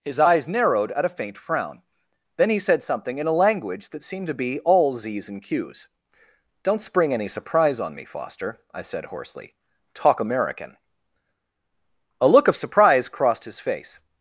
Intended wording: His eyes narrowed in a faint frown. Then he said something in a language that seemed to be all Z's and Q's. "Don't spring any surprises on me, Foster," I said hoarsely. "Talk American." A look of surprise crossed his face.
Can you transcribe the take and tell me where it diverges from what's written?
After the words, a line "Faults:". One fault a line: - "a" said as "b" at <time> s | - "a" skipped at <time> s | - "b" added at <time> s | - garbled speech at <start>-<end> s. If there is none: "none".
His eyes narrowed at a faint frown. Then he said something in a language that seemed to be all Z's and Q's. "Don't spring any surprise on me, Foster," I said hoarsely. "Talk American." A look of surprise crossed his face.
Faults:
- "in" said as "at" at 0.9 s
- "surprises" said as "surprise" at 7.3 s